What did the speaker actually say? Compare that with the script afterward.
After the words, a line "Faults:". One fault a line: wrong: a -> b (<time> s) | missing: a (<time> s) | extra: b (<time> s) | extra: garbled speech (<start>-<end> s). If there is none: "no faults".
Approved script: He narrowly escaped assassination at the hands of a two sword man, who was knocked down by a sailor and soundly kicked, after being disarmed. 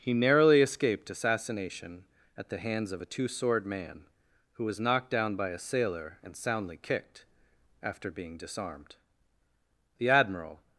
He narrowly escaped assassination at the hands of a two sword man, who was knocked down by a sailor and soundly kicked, after being disarmed. The Admiral
Faults:
extra: The Admiral (10.0 s)